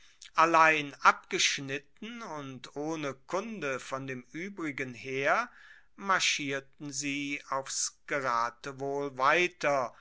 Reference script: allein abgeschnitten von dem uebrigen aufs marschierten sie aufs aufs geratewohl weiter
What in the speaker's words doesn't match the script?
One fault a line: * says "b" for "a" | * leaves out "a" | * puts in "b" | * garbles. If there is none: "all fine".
* puts in "und ohne kunde"
* says "heer" for "aufs"
* leaves out "aufs"